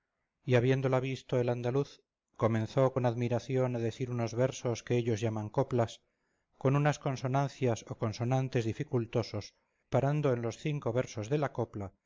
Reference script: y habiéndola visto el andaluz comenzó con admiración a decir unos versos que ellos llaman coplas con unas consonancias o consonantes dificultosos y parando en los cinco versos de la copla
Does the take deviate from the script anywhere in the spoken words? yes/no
yes